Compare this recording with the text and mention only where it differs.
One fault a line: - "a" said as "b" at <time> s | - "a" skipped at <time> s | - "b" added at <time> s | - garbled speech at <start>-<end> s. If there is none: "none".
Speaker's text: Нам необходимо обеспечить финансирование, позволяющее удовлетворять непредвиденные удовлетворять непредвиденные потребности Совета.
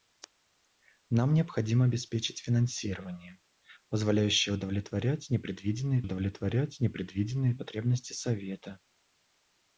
none